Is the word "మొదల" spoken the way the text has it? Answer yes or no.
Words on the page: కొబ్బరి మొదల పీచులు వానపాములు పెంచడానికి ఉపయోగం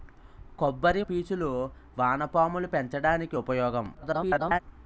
no